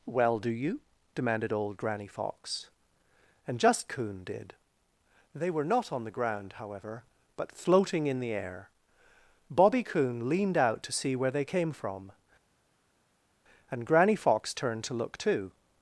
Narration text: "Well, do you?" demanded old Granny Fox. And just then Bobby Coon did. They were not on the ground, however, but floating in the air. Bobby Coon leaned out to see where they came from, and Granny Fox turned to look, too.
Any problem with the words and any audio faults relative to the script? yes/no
yes